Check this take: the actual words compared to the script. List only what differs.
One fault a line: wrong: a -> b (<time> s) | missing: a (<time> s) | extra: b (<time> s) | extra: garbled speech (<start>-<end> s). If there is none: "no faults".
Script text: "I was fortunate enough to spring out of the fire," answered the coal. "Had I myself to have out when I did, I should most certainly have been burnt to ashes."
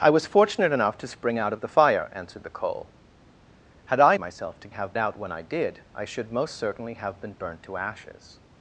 no faults